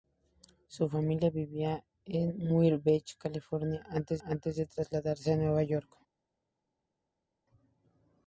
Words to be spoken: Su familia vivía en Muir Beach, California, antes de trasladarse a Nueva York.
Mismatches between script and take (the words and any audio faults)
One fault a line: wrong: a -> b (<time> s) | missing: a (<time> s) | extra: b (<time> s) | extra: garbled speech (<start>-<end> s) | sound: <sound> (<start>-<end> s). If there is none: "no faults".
extra: antes (4.2 s)